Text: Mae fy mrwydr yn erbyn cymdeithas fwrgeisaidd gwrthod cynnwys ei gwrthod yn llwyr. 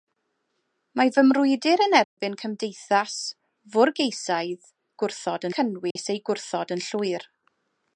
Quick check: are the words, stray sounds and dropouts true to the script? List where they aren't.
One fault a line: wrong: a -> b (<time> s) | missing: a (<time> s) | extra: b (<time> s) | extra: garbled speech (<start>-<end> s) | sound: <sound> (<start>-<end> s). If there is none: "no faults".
sound: dropout (2.0-2.2 s)
sound: dropout (5.9-6.0 s)